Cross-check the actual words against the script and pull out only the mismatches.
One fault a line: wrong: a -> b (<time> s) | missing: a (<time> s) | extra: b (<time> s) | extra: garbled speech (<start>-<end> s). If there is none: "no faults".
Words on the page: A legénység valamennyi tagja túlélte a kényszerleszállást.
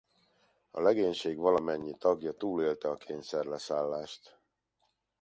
no faults